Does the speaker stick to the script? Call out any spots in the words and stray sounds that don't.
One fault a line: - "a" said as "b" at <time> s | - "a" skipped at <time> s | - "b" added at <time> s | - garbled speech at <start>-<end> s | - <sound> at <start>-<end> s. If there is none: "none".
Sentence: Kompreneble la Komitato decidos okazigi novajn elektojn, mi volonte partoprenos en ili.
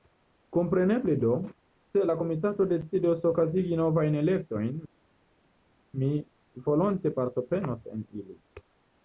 - "do se" added at 1.2 s